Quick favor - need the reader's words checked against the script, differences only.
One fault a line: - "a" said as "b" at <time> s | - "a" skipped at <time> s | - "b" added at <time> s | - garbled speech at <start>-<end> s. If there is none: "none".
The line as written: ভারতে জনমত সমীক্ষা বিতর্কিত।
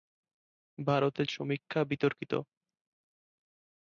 - "জনমত" skipped at 1.2 s